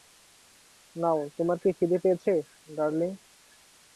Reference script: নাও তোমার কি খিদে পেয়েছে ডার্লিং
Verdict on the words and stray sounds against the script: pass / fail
pass